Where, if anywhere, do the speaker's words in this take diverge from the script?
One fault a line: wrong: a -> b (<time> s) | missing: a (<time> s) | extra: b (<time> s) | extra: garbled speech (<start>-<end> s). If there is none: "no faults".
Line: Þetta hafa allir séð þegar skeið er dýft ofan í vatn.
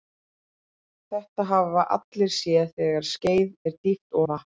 missing: ofan (4.2 s)